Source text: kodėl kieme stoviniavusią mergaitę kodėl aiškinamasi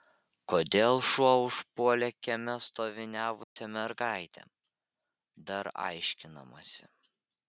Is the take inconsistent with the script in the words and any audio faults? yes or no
yes